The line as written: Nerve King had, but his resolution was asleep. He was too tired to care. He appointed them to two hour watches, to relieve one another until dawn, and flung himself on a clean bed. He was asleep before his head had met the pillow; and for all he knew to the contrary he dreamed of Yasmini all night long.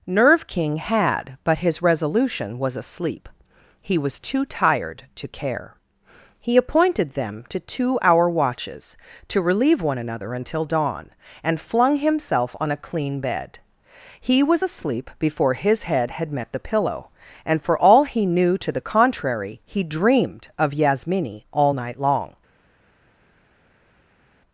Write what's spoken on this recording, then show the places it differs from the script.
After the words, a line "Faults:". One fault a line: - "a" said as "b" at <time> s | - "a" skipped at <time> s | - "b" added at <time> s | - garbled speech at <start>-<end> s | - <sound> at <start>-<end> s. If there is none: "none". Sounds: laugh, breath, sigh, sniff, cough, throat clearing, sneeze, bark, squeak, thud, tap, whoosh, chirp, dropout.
Nerve King had, but his resolution was asleep. He was too tired to care. He appointed them to two hour watches, to relieve one another until dawn, and flung himself on a clean bed. He was asleep before his head had met the pillow; and for all he knew to the contrary he dreamed of Yasmini all night long.
Faults:
none